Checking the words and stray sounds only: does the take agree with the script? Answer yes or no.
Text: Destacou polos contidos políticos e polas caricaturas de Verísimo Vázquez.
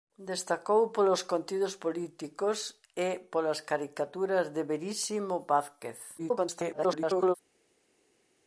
no